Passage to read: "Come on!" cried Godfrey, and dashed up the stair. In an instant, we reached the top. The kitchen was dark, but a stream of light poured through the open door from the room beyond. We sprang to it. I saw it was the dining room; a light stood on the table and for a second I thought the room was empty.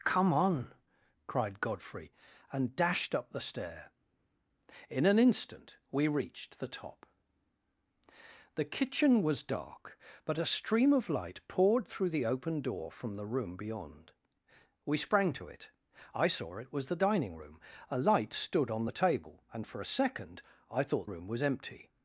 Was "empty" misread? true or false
false